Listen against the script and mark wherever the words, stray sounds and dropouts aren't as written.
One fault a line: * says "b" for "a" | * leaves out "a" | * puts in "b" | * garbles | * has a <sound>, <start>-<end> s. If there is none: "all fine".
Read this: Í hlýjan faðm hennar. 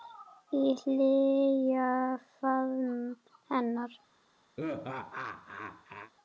* has a laugh, 4.6-6.1 s